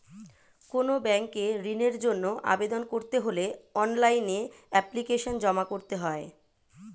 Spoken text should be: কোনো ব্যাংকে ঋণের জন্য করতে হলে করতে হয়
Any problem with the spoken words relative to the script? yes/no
yes